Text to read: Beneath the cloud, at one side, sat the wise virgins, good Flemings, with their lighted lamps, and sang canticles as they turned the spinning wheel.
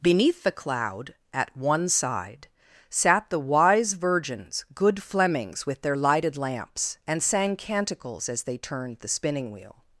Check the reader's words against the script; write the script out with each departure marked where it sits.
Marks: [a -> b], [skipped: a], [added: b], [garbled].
Beneath the cloud, at one side, sat the wise virgins, good Flemings, with their lighted lamps, and sang canticles as they turned the spinning wheel.